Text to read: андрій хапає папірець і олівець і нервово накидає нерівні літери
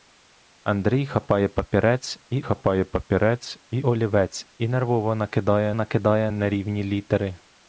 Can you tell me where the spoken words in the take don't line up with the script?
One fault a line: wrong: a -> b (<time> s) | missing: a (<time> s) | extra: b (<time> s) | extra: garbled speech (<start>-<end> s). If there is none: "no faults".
extra: хапає папірець і (2.4 s)
extra: накидає (5.7 s)